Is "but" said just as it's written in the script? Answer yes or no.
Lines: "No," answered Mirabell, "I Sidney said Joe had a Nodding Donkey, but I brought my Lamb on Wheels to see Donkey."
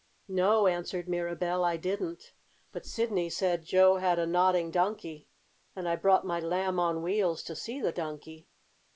no